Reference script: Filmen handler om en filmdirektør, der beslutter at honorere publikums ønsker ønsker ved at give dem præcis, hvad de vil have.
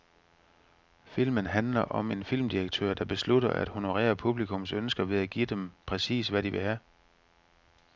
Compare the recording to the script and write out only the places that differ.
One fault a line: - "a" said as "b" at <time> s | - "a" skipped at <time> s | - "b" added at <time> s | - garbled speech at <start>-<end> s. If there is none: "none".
- "ønsker" skipped at 5.0 s